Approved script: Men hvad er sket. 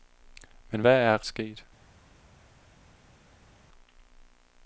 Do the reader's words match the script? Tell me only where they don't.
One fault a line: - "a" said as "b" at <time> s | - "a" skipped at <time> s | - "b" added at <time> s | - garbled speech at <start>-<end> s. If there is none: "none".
none